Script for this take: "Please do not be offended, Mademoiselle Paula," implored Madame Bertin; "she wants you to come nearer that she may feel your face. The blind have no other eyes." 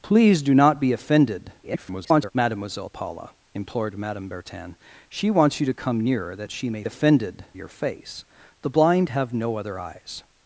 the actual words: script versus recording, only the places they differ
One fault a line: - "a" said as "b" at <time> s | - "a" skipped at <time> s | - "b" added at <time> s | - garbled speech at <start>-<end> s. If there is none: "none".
- garbled speech at 1.6-2.3 s
- "feel" said as "offended" at 6.8 s